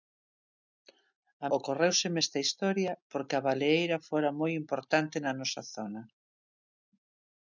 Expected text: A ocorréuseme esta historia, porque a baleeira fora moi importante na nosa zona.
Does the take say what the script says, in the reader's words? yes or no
yes